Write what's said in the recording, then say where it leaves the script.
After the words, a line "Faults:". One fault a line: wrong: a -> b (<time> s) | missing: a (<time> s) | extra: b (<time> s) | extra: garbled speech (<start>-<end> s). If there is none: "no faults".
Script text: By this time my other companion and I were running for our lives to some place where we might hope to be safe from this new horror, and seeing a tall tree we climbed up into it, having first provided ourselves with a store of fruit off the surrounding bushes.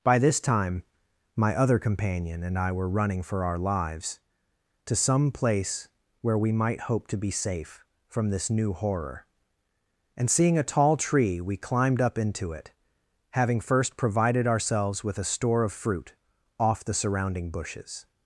By this time my other companion and I were running for our lives to some place where we might hope to be safe from this new horror, and seeing a tall tree we climbed up into it, having first provided ourselves with a store of fruit off the surrounding bushes.
Faults:
no faults